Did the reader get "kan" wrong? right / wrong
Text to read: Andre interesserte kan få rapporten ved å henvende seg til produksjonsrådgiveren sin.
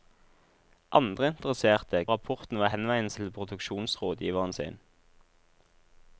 wrong